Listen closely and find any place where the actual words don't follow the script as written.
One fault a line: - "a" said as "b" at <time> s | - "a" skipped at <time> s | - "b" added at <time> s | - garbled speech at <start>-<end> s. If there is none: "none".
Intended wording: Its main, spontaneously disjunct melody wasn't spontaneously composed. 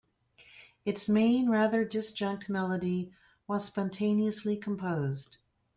- "spontaneously" said as "rather" at 1.5 s
- "wasn't" said as "was" at 3.5 s